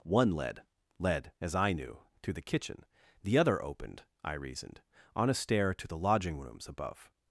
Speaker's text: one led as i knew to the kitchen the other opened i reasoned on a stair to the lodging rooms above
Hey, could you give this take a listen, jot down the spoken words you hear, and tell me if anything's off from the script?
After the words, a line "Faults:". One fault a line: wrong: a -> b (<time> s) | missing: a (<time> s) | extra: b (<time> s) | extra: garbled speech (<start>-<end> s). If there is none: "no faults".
one led led as i knew to the kitchen the other opened i reasoned on a stair to the lodging rooms above
Faults:
extra: led (1.0 s)